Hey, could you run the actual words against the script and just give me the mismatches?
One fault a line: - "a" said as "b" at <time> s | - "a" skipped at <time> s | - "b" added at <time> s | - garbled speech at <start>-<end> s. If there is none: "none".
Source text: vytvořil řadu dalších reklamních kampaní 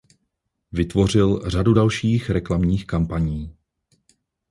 none